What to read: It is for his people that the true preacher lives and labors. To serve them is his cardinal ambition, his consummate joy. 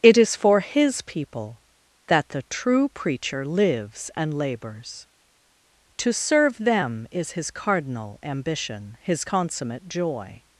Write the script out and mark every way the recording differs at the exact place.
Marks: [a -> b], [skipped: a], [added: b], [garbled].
It is for his people that the true preacher lives and labors. To serve them is his cardinal ambition, his consummate joy.